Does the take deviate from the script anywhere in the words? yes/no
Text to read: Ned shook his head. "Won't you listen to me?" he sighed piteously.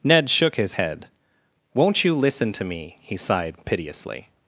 no